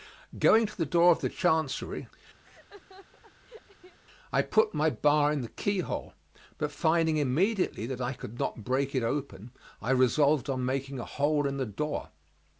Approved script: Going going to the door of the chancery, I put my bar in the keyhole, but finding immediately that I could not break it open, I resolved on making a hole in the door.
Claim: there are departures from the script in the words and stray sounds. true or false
true